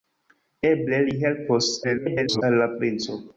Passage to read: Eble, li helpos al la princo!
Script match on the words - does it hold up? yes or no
no